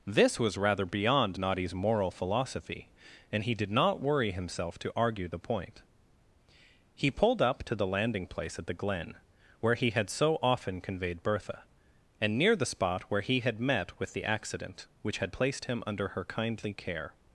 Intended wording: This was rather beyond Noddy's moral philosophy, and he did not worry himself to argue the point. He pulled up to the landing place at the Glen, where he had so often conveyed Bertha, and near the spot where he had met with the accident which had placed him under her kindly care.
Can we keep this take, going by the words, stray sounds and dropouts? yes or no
yes